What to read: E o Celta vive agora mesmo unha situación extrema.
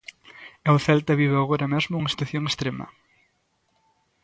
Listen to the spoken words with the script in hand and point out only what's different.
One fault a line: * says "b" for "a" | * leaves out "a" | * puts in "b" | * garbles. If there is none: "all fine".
all fine